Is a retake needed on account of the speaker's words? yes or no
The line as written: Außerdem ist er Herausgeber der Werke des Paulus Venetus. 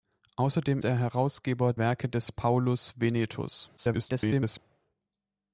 yes